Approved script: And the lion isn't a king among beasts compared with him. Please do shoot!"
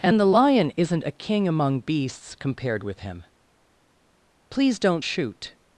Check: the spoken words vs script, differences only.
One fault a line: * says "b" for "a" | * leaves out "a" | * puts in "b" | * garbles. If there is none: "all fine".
* says "don't" for "do"